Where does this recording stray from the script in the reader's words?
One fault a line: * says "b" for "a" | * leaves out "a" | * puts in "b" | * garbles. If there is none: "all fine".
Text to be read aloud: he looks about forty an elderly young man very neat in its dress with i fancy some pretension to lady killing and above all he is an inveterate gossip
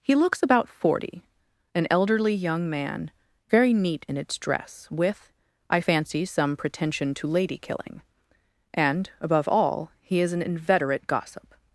all fine